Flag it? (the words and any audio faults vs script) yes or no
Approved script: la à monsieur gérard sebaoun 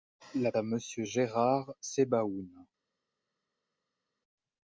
no